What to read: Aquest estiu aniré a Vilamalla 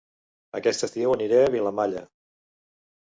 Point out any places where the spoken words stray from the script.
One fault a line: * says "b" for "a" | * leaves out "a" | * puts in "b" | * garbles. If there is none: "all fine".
all fine